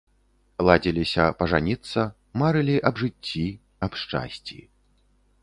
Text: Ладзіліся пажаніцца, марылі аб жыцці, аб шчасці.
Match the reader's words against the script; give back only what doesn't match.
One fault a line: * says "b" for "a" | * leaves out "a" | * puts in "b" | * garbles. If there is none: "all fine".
all fine